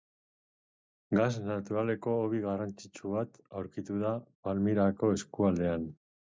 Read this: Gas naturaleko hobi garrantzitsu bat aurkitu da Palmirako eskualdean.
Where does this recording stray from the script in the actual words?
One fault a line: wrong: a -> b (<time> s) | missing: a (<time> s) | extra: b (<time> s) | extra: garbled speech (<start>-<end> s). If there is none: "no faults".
no faults